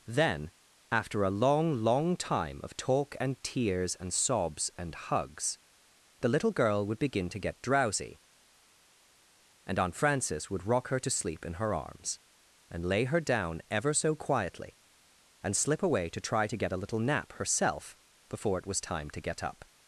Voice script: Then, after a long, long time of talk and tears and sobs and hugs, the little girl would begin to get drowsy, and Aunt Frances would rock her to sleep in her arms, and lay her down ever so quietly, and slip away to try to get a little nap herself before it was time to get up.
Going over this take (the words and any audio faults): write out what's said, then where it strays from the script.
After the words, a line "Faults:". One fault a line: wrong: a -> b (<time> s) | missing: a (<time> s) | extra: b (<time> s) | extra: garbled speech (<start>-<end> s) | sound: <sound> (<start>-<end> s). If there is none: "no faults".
Then, after a long, long time of talk and tears and sobs and hugs, the little girl would begin to get drowsy, and Aunt Frances would rock her to sleep in her arms, and lay her down ever so quietly, and slip away to try to get a little nap herself before it was time to get up.
Faults:
no faults